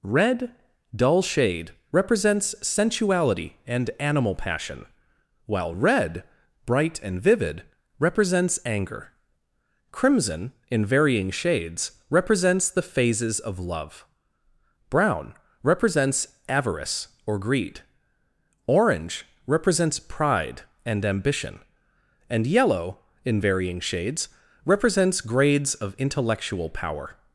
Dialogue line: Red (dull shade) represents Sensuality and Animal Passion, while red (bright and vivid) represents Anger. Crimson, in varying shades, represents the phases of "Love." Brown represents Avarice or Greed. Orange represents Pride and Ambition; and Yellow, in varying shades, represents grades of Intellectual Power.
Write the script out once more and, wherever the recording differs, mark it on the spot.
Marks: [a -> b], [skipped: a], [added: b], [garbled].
Red (dull shade) represents Sensuality and Animal Passion, while red (bright and vivid) represents Anger. Crimson, in varying shades, represents the phases of "Love." Brown represents Avarice or Greed. Orange represents Pride and Ambition; and Yellow, in varying shades, represents grades of Intellectual Power.